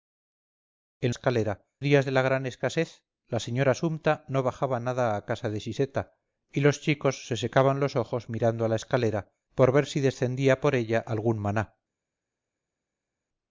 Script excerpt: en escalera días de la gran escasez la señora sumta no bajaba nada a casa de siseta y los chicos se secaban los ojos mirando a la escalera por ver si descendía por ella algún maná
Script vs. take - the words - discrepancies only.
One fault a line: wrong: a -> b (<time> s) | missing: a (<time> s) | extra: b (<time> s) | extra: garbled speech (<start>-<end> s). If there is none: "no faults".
no faults